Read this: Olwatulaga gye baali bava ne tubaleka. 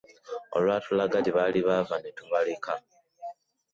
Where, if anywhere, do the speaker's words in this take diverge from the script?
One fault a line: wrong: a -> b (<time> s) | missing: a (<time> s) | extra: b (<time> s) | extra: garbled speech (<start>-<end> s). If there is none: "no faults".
no faults